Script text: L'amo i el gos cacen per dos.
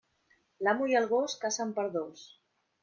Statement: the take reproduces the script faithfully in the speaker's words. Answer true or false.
true